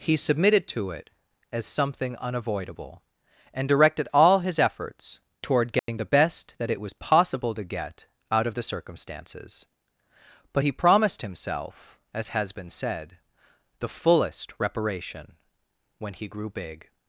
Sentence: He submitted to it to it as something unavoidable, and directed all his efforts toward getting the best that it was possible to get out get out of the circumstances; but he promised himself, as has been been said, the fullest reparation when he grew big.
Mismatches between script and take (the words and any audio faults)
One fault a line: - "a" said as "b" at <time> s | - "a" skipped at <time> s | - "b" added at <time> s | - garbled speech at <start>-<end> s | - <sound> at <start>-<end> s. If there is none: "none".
- "to it" skipped at 1.1 s
- dropout at 5.8-5.9 s
- "get out" skipped at 8.5 s
- "been" skipped at 12.7 s